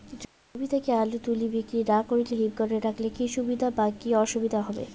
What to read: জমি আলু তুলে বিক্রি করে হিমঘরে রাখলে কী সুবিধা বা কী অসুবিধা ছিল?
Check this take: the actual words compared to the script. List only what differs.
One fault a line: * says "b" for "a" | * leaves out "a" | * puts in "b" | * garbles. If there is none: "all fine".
* puts in "থেকে"
* puts in "না"
* says "হবে" for "ছিল"